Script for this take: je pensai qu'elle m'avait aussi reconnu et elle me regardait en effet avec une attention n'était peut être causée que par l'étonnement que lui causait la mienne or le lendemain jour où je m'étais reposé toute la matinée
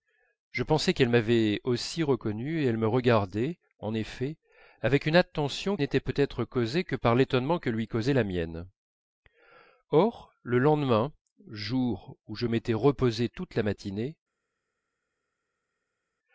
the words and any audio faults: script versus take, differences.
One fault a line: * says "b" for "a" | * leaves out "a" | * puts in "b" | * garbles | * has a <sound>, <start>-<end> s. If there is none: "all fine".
all fine